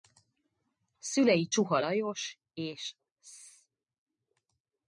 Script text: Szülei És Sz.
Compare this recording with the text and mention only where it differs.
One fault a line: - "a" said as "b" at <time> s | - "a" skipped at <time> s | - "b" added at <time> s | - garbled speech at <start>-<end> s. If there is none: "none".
- "Csuha Lajos" added at 1.5 s